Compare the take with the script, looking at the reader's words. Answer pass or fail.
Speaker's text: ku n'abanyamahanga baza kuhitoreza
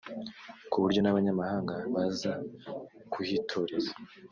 fail